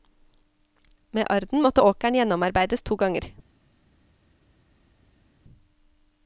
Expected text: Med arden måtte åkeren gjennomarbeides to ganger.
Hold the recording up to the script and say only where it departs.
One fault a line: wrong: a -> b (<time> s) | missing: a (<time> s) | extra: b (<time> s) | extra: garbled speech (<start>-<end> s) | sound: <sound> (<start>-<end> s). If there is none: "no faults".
no faults